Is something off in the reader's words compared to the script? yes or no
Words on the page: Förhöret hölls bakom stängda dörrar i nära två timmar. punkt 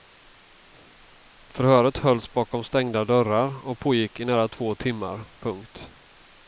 yes